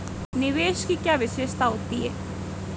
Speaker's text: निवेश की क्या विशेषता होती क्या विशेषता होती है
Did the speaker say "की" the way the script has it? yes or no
yes